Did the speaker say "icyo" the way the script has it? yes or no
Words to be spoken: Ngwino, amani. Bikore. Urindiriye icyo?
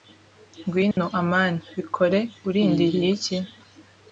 no